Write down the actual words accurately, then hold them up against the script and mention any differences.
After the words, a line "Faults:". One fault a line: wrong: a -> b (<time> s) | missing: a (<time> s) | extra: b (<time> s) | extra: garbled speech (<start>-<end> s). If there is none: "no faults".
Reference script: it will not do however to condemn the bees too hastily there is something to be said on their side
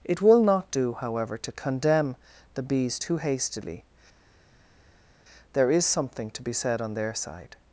it will not do however to condemn the bees too hastily there is something to be said on their side
Faults:
no faults